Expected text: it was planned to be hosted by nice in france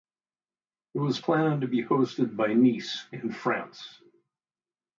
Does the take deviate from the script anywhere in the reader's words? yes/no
no